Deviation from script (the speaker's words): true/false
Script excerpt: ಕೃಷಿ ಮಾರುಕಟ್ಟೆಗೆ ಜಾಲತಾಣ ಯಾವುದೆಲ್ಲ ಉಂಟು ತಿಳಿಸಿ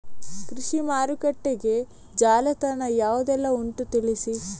false